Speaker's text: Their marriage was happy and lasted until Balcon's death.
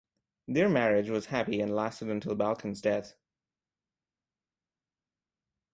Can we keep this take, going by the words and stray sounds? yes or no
yes